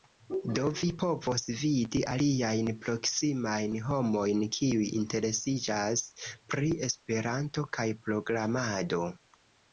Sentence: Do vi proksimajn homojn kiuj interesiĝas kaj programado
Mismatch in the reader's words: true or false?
true